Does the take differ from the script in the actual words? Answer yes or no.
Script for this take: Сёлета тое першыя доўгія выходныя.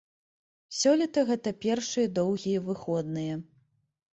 yes